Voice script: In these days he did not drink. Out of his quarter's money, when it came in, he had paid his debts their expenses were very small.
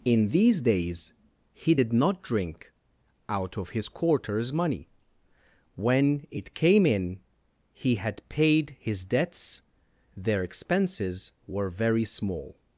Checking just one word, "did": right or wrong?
right